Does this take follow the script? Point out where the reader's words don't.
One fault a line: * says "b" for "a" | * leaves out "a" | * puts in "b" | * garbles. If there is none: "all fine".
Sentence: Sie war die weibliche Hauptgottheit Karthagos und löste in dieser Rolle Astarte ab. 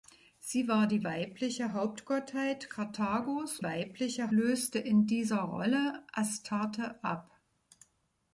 * says "weibliche" for "und"